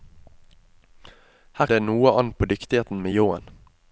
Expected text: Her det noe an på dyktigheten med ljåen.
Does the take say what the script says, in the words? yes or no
yes